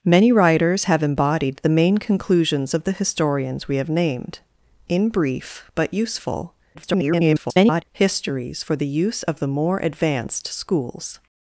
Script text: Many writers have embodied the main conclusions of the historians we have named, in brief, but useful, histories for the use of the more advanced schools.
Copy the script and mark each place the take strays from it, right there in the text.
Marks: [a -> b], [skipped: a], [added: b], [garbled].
Many writers have embodied the main conclusions of the historians we have named, in brief, but useful, [garbled] histories for the use of the more advanced schools.